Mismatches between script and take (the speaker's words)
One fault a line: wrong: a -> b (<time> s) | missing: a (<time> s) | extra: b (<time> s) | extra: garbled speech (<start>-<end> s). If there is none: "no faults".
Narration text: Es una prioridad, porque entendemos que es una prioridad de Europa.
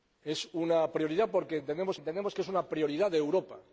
extra: entendemos (1.9 s)